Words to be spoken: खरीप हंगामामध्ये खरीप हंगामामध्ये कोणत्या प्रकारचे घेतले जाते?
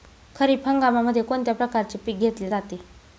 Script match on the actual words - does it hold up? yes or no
no